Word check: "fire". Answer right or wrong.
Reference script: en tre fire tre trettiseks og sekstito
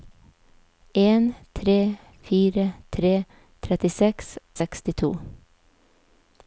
right